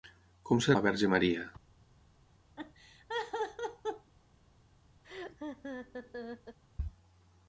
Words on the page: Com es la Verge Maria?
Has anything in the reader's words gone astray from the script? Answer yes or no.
no